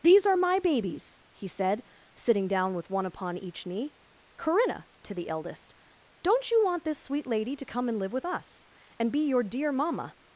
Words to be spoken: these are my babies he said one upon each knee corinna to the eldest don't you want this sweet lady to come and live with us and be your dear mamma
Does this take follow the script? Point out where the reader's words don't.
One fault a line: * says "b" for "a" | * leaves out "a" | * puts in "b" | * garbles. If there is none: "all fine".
* puts in "sitting down with"